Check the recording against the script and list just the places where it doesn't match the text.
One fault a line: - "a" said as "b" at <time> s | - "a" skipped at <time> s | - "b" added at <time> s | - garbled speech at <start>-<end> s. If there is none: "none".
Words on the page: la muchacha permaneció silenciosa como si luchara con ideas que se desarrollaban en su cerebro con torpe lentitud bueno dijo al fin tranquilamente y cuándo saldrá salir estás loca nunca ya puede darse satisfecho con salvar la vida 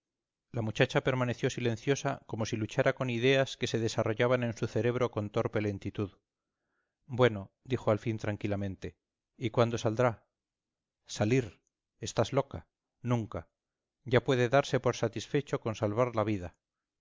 - "por" added at 14.8 s